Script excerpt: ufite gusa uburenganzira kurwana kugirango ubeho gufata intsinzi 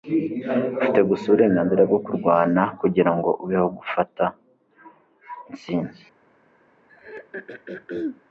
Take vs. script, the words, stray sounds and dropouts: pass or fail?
fail